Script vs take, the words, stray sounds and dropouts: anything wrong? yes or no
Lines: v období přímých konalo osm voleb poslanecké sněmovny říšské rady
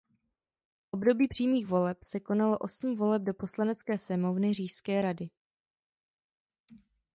yes